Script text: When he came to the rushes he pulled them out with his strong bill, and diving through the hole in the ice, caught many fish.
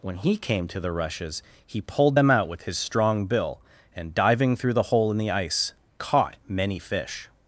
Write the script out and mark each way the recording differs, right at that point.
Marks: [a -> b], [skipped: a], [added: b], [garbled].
When he came to the rushes he pulled them out with his strong bill, and diving through the hole in the ice, caught many fish.